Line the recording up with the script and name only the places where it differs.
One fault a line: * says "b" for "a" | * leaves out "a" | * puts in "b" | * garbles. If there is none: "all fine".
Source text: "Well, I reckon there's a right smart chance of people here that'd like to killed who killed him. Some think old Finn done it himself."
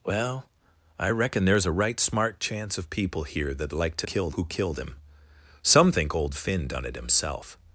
all fine